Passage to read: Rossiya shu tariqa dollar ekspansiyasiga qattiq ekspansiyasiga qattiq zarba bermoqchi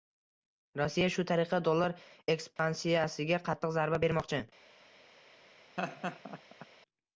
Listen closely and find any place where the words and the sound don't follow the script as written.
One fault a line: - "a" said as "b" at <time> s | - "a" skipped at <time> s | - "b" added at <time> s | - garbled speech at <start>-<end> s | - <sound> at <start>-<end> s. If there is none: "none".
- dropout at 2.6-2.6 s
- "ekspansiyasiga qattiq" skipped at 3.8 s
- laugh at 5.8-6.7 s